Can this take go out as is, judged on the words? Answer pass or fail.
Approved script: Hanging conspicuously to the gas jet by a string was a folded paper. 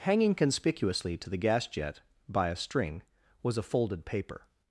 pass